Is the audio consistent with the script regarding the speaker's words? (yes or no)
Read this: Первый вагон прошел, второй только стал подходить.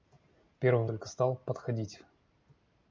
no